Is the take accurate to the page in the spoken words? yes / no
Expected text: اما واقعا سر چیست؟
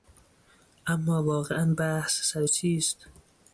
no